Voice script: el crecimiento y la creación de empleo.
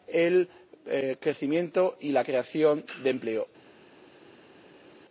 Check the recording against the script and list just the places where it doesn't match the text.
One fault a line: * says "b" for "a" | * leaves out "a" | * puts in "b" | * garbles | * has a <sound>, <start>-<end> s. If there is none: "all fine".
all fine